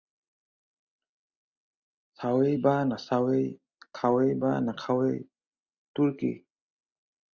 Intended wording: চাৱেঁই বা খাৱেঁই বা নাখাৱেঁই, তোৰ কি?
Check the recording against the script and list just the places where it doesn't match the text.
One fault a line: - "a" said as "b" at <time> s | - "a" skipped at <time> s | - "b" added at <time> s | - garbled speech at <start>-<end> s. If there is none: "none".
- "নাচাৱেঁই" added at 2.8 s